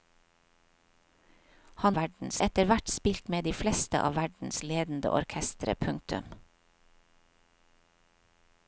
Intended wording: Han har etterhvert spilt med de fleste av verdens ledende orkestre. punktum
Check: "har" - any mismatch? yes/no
yes